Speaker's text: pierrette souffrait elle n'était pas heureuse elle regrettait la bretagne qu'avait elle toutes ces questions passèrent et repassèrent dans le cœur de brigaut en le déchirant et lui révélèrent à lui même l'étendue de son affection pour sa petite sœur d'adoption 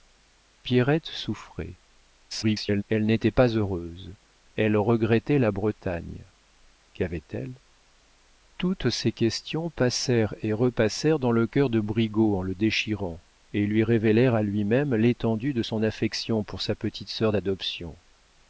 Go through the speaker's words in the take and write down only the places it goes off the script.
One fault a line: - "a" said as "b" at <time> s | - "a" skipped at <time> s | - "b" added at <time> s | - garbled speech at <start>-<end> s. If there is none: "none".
- garbled speech at 2.3-2.8 s